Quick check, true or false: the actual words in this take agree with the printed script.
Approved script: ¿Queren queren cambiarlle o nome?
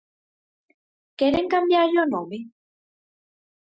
false